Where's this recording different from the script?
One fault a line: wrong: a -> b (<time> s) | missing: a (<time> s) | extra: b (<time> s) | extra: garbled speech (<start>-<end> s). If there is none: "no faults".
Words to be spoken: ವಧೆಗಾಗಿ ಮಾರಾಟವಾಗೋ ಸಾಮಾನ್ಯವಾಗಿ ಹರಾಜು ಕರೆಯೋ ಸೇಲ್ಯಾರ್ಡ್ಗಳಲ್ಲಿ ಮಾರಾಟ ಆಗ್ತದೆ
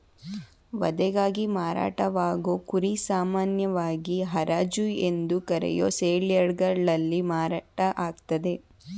extra: ಕುರಿ (2.6 s)
extra: ಎಂದು (5.1 s)